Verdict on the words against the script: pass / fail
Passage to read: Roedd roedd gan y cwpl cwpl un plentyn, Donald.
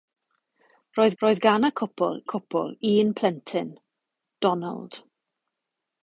pass